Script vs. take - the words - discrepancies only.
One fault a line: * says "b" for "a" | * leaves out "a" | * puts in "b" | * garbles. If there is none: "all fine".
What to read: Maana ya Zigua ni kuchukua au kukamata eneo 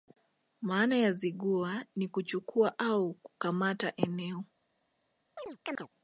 all fine